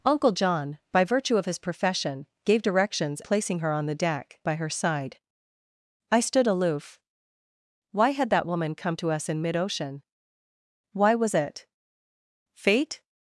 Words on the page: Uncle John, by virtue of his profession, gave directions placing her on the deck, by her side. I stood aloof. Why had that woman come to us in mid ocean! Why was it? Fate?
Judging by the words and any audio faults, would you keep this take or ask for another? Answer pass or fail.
pass